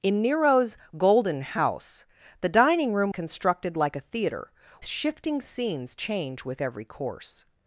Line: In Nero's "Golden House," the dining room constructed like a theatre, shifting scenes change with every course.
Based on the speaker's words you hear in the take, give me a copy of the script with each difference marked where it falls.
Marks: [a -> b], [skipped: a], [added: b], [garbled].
In Nero's "Golden House," the dining room constructed like a theatre, shifting scenes change with every course.